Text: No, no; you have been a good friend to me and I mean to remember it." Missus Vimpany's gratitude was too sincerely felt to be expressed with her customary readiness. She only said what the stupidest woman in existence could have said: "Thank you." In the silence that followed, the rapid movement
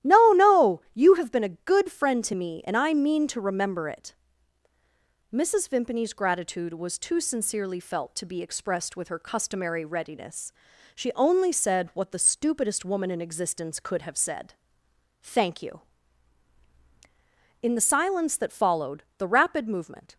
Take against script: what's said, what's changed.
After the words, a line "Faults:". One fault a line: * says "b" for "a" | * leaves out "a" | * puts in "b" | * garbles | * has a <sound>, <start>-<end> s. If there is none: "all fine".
No, no; you have been a good friend to me and I mean to remember it." Missus Vimpany's gratitude was too sincerely felt to be expressed with her customary readiness. She only said what the stupidest woman in existence could have said: "Thank you." In the silence that followed, the rapid movement
Faults:
all fine